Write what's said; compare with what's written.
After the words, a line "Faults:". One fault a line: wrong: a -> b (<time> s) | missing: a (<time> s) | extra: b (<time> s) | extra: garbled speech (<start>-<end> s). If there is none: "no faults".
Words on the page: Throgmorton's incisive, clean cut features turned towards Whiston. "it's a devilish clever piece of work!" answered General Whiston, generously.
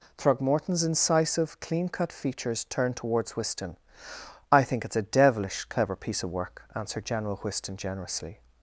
Throgmorton's incisive, clean cut features turned towards Whiston. "I think it's a devilish clever piece of work!" answered General Whiston, generously.
Faults:
extra: I think (4.5 s)